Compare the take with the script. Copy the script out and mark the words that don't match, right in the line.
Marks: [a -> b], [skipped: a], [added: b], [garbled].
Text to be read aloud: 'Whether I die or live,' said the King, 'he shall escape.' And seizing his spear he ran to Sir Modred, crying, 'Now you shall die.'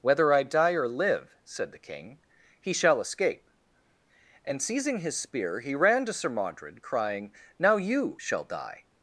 'Whether I die or live,' said the King, 'he shall escape.' And seizing his spear he ran to Sir Modred, crying, 'Now you shall die.'